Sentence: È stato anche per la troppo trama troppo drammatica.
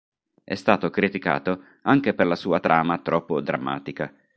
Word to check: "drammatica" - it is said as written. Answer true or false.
true